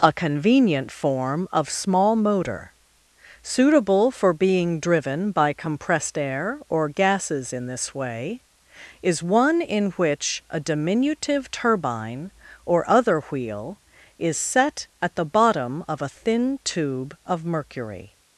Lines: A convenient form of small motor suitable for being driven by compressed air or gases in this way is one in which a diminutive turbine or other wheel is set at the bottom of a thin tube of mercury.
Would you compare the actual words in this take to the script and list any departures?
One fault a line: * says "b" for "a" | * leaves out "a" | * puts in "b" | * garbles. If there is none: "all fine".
all fine